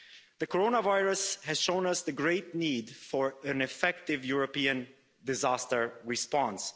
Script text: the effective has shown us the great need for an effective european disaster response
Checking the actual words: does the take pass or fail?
fail